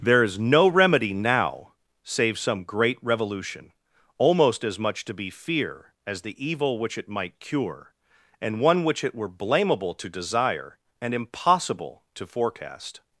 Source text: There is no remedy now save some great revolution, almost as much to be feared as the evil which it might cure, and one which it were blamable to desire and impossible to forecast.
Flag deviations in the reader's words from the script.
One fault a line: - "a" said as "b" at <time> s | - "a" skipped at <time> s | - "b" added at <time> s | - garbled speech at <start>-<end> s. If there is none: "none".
- "feared" said as "fear" at 5.3 s